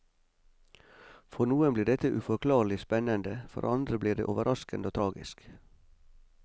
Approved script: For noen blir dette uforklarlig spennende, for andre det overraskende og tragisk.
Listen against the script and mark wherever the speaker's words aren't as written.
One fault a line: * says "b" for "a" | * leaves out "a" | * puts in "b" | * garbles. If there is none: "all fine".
* puts in "blir"